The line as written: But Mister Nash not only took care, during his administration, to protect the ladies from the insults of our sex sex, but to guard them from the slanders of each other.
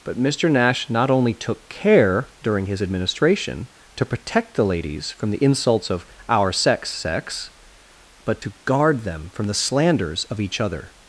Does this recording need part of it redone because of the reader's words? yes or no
no